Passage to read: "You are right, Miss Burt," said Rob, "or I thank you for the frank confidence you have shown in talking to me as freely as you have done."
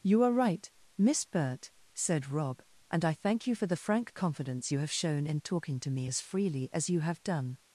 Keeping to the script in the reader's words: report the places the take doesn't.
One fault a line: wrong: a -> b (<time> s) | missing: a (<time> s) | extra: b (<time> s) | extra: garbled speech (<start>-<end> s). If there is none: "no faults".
wrong: or -> and (2.9 s)